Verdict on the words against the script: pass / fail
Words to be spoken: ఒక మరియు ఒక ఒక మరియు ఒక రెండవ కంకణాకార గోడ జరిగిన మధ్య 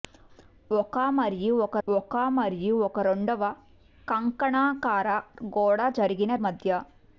pass